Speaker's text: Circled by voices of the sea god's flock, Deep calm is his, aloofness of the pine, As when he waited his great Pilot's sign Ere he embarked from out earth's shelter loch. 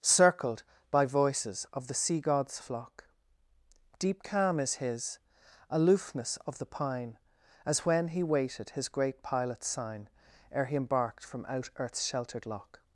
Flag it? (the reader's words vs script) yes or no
yes